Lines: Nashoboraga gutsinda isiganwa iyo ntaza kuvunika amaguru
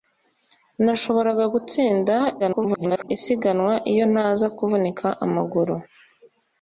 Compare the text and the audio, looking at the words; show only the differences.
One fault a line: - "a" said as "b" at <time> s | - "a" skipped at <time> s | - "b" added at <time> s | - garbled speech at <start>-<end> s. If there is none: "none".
- garbled speech at 2.4-3.1 s